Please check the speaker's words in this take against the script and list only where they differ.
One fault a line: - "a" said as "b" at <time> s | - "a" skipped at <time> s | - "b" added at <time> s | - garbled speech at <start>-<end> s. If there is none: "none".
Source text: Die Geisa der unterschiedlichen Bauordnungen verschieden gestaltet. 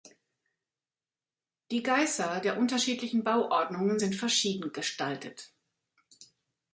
- "sind" added at 4.0 s